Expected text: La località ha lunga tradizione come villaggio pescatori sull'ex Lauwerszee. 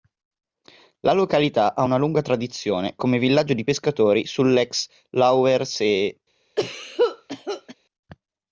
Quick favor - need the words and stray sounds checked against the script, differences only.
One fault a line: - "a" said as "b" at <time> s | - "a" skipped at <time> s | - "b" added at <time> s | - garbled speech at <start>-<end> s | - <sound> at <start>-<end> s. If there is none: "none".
- "una" added at 1.8 s
- "di" added at 3.5 s
- cough at 6.6-7.7 s